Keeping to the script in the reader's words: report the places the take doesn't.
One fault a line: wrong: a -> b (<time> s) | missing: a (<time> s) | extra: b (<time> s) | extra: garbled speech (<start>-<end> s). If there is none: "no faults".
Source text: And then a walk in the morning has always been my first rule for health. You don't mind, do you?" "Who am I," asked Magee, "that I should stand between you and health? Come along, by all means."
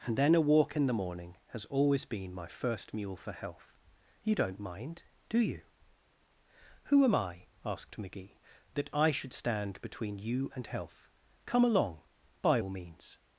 wrong: rule -> mule (2.9 s)